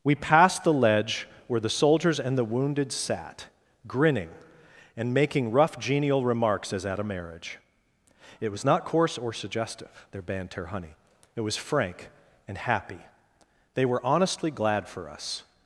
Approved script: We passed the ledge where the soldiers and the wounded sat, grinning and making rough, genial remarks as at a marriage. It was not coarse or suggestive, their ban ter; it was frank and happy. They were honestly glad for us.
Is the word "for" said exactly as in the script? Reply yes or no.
yes